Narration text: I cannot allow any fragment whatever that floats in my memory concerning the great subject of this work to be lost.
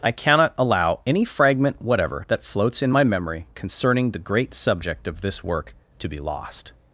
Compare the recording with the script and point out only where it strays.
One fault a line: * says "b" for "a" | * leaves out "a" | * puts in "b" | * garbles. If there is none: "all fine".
all fine